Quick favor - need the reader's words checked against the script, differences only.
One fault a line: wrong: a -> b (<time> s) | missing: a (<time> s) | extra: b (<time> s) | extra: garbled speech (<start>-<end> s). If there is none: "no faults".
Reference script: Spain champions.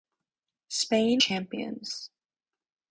no faults